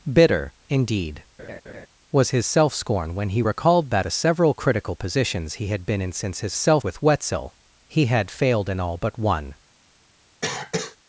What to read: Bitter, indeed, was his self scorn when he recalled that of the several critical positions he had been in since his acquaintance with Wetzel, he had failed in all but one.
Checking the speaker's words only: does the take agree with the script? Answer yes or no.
no